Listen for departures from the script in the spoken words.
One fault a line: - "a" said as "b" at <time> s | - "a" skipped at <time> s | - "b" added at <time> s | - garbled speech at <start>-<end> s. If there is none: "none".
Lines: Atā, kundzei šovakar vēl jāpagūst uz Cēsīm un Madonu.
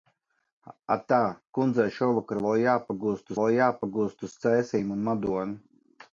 - "vēl jāpagūst" added at 3.4 s